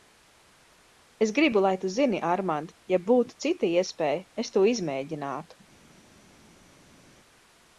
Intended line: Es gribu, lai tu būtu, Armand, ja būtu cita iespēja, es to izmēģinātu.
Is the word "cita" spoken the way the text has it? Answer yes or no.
yes